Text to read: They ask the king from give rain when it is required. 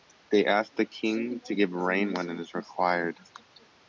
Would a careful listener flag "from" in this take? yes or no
yes